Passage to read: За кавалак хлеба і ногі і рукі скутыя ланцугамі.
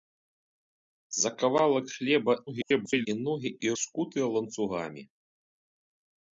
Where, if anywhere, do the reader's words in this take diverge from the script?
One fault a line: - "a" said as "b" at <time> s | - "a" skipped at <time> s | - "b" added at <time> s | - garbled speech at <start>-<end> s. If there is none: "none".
- garbled speech at 2.5-3.1 s
- "рукі" skipped at 3.7 s